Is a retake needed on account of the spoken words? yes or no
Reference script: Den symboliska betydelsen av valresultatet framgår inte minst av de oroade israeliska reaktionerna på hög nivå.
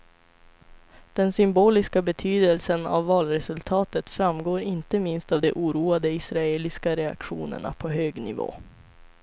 no